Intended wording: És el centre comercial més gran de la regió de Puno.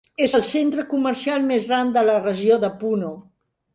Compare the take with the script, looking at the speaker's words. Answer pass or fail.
pass